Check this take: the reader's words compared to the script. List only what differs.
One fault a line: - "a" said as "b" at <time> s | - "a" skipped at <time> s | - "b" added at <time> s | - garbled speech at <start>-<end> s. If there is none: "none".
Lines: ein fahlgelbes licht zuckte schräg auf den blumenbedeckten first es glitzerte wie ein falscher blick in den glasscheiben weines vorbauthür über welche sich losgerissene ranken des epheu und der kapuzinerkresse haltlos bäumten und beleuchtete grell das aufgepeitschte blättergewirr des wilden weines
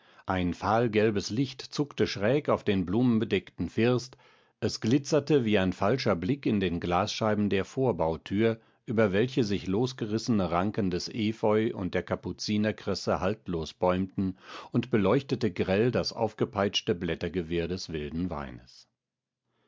- "weines" said as "der" at 7.5 s